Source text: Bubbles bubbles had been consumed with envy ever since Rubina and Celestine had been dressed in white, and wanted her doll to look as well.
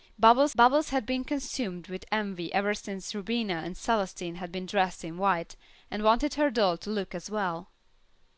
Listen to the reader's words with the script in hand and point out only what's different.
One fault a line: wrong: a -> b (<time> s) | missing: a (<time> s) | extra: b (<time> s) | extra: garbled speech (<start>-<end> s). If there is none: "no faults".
no faults